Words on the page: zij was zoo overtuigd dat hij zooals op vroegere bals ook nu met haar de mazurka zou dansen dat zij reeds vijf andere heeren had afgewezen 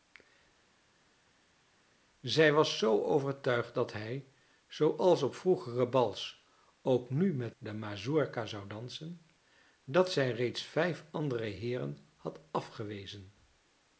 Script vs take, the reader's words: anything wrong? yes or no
yes